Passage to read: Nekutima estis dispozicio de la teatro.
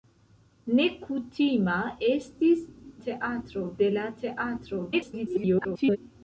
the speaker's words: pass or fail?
fail